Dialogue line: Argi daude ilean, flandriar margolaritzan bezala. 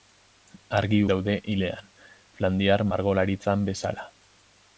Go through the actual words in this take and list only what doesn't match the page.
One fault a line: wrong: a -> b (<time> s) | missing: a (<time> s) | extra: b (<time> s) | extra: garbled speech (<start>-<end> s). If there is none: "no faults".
no faults